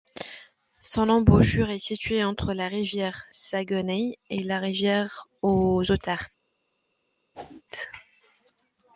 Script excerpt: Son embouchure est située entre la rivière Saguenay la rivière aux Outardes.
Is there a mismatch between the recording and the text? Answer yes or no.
yes